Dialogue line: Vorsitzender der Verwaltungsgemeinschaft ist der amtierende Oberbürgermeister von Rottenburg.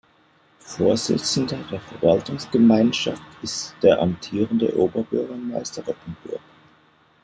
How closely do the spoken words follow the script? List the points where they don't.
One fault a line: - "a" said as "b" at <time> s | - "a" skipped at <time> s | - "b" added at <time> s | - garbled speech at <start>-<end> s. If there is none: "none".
- "von" skipped at 5.8 s